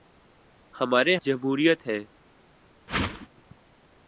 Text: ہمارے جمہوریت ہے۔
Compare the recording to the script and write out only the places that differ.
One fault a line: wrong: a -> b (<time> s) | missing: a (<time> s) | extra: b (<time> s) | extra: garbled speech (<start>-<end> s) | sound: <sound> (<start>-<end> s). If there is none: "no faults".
sound: whoosh (2.9-3.3 s)